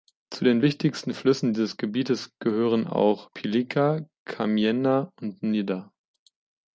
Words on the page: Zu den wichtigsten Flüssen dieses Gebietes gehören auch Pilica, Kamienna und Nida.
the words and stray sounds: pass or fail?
pass